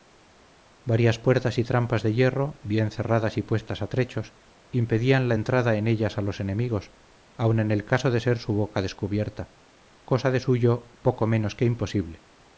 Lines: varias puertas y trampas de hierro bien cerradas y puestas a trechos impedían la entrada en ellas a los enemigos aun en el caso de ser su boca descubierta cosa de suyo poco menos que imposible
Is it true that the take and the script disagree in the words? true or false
false